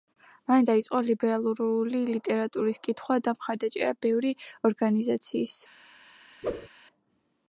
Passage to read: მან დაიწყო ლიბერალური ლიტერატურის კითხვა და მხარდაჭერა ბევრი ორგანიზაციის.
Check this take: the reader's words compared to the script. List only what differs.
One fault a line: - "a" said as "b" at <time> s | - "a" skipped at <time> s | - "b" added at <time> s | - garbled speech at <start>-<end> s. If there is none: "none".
none